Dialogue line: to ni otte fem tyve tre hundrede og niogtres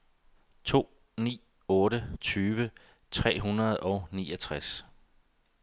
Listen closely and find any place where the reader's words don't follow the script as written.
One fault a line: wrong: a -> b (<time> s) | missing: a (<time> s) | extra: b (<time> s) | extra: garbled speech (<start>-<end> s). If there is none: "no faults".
missing: fem (2.0 s)